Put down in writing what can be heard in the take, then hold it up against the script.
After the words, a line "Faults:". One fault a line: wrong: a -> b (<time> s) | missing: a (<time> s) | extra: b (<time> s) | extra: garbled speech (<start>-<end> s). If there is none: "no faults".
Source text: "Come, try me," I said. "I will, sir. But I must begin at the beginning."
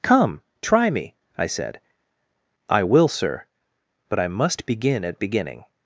"Come, try me," I said. "I will, sir. But I must begin at beginning."
Faults:
missing: the (5.2 s)